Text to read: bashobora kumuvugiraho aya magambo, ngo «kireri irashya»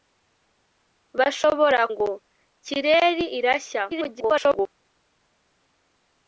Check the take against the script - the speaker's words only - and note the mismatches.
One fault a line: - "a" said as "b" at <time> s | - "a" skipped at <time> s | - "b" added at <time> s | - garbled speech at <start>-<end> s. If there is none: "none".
- "kumuvugiraho aya magambo" skipped at 1.8 s
- garbled speech at 3.9-4.7 s